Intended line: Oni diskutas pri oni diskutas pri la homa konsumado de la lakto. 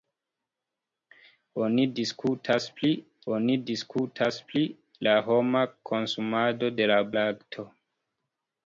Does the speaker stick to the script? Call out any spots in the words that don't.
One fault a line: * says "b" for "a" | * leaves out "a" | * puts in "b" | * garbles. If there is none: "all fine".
all fine